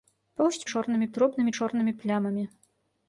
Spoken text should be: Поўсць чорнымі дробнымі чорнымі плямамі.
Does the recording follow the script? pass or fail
pass